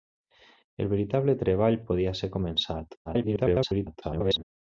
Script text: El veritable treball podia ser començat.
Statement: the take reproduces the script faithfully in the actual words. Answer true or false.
false